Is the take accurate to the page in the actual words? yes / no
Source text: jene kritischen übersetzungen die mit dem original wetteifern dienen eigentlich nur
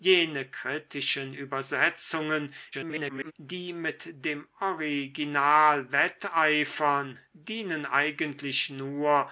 no